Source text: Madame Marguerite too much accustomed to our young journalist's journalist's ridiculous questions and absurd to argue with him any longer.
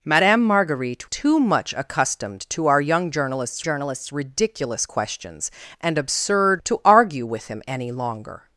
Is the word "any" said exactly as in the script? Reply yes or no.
yes